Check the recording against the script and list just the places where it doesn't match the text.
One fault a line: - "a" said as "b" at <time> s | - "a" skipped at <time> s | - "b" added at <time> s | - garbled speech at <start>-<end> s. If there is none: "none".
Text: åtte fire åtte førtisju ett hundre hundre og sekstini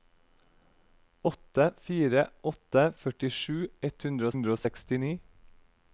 none